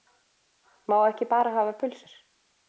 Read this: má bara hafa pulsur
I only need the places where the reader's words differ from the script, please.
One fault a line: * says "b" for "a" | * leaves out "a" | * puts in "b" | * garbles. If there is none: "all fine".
* puts in "ekki"